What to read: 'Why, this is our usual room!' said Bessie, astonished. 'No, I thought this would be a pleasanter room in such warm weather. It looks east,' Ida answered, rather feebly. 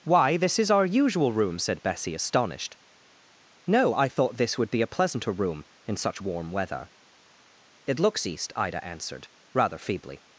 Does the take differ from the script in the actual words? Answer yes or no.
no